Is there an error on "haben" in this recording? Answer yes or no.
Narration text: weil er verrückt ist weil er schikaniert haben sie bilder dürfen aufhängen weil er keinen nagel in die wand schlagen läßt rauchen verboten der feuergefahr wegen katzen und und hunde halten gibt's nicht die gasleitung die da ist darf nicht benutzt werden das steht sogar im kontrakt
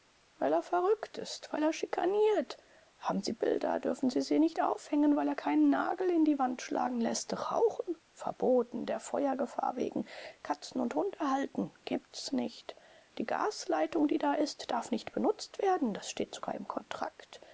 no